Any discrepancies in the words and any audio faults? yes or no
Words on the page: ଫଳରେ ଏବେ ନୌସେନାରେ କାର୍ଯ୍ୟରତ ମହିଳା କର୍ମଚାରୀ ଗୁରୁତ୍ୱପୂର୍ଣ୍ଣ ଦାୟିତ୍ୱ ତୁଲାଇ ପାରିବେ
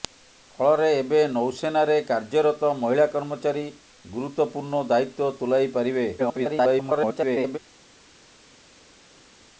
yes